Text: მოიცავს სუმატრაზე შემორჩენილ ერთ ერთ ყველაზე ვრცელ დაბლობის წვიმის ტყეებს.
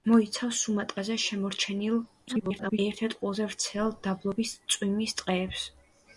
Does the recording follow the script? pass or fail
fail